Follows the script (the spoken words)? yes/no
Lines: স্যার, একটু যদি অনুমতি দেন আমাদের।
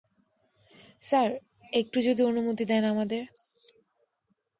yes